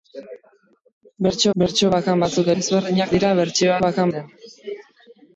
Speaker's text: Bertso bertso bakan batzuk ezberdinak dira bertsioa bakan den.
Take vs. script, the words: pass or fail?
pass